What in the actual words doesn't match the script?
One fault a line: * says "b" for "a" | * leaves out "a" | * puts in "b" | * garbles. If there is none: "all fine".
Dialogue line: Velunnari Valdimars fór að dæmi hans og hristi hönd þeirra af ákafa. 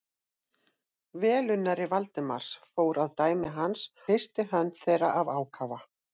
* leaves out "og"